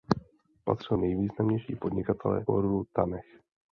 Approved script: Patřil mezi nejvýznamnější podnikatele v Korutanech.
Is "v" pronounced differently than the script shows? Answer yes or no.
yes